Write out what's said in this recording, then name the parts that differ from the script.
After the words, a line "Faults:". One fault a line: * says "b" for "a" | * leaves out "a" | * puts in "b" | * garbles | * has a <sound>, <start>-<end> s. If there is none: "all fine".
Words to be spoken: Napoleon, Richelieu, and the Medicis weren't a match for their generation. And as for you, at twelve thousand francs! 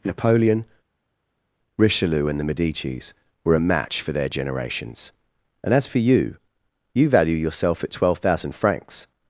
Napoleon, Richelieu, and the Medicis were a match for their generations. And as for you, you value yourself at twelve thousand francs!
Faults:
* says "were" for "weren't"
* says "generations" for "generation"
* puts in "you value yourself"